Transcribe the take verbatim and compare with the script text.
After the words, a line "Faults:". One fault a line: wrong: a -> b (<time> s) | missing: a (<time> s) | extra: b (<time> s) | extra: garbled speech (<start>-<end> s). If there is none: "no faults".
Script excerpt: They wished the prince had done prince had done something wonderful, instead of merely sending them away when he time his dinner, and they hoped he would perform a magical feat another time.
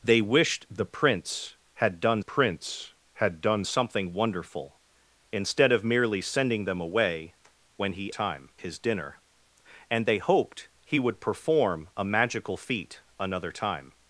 They wished the prince had done prince had done something wonderful, instead of merely sending them away when he time his dinner, and they hoped he would perform a magical feat another time.
Faults:
no faults